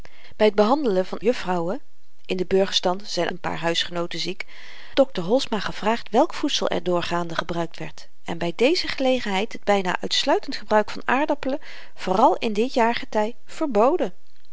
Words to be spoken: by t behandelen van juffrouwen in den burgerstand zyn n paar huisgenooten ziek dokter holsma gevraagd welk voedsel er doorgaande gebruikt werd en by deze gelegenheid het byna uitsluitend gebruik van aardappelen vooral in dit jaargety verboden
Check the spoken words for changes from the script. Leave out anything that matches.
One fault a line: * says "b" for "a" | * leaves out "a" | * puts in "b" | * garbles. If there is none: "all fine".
all fine